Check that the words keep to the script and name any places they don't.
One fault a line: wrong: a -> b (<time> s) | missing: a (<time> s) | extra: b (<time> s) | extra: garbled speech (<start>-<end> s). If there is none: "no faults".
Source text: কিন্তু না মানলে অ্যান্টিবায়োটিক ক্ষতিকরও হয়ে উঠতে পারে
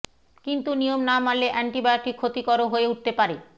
extra: নিয়ম (0.8 s)